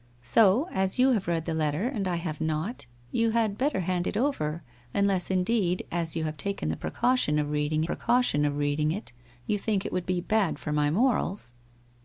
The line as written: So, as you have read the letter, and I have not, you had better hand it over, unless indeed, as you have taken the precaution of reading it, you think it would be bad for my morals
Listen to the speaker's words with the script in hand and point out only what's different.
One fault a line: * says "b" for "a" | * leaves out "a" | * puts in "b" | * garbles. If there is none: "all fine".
* puts in "precaution of reading"